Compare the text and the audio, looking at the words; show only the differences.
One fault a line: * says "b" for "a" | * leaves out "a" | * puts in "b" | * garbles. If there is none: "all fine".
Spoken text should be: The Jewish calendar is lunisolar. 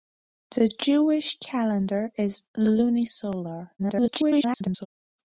* garbles